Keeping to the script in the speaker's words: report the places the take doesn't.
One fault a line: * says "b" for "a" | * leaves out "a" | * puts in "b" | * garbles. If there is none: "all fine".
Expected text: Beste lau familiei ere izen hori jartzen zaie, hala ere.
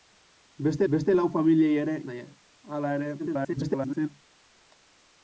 * puts in "beste"
* leaves out "izen hori jartzen"
* garbles